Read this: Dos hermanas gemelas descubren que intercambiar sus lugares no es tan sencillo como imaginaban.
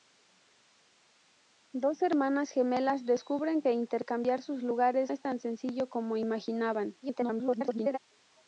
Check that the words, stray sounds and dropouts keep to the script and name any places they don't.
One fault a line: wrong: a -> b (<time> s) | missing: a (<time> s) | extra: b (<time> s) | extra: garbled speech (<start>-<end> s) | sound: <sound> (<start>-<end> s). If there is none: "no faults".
missing: no (5.1 s)
extra: garbled speech (7.0-8.0 s)